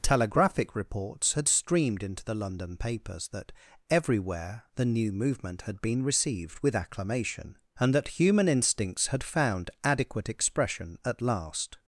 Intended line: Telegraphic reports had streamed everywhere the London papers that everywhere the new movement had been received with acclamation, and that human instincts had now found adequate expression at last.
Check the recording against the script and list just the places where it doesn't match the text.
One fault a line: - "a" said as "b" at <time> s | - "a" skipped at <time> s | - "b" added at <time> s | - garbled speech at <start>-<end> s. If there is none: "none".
- "everywhere" said as "into" at 2.0 s
- "now" skipped at 9.2 s